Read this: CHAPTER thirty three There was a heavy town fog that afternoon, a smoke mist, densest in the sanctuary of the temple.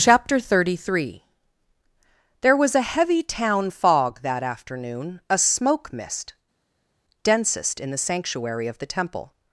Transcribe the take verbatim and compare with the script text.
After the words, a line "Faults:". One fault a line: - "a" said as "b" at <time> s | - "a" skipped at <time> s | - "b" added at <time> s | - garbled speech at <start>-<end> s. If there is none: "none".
CHAPTER thirty three There was a heavy town fog that afternoon, a smoke mist, densest in the sanctuary of the temple.
Faults:
none